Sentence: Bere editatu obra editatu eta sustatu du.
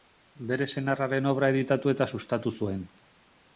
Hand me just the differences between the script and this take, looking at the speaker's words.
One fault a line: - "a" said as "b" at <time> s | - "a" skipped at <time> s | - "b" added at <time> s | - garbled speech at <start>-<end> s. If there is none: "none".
- "editatu" said as "senarraren" at 0.8 s
- "du" said as "zuen" at 2.6 s